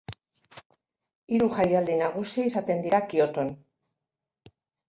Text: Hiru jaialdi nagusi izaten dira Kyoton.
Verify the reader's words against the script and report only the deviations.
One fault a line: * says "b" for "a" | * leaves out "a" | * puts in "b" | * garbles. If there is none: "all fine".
all fine